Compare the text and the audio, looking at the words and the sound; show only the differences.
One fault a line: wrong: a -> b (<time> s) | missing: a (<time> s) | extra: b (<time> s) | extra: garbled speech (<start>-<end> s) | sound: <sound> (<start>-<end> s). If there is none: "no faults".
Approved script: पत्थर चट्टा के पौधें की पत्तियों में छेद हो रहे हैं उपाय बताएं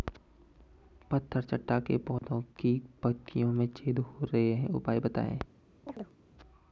sound: dropout (2.2-2.2 s)
sound: chirp (5.9-6.2 s)